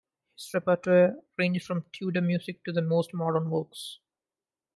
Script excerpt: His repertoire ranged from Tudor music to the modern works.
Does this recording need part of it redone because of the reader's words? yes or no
yes